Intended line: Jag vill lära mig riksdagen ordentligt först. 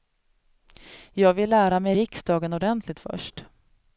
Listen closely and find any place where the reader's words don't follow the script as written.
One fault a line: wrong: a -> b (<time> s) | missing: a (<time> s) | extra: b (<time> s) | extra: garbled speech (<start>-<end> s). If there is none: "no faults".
no faults